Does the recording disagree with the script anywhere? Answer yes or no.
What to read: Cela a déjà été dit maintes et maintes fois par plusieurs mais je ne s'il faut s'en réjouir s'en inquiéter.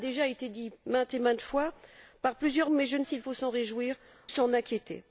no